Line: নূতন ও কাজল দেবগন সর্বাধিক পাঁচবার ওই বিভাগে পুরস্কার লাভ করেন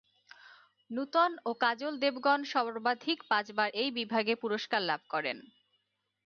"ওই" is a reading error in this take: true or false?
true